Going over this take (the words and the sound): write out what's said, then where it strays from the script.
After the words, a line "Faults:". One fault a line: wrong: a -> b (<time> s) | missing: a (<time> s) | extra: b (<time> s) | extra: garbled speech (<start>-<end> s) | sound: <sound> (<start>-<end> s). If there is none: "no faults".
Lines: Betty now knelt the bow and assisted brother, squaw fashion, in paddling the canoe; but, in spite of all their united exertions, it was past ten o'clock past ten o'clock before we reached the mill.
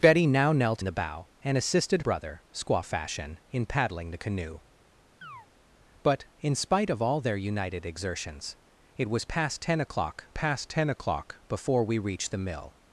Betty now knelt the bow and assisted brother, squaw fashion, in paddling the canoe; but, in spite of all their united exertions, it was past ten o'clock past ten o'clock before we reached the mill.
Faults:
sound: chirp (5.2-5.5 s)